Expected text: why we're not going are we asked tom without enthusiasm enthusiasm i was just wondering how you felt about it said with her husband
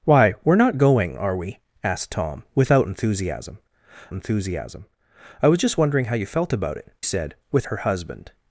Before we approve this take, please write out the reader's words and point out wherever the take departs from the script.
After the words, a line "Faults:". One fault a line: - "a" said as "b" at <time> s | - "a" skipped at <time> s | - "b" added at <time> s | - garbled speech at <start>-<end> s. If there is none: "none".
why we're not going are we asked tom without enthusiasm enthusiasm i was just wondering how you felt about it said with her husband
Faults:
none